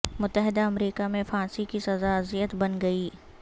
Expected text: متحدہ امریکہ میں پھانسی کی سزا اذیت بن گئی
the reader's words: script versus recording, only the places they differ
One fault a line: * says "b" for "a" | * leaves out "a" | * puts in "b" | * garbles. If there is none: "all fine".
all fine